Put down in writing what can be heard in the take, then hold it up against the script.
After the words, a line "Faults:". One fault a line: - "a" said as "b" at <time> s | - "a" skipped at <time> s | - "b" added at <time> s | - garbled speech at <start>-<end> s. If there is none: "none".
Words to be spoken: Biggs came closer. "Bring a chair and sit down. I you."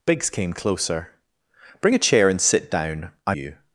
Biggs came closer. "Bring a chair and sit down. I you."
Faults:
none